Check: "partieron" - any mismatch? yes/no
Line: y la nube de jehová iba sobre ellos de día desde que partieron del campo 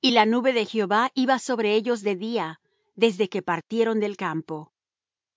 no